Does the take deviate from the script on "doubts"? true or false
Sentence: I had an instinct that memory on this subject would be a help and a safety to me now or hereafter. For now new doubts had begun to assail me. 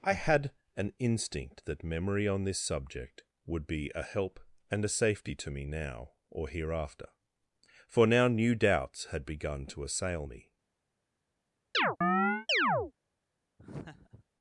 false